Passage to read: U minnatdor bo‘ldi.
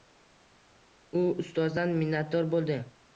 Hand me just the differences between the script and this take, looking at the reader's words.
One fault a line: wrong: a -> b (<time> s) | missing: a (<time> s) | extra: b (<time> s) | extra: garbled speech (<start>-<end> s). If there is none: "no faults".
extra: ustozdan (1.4 s)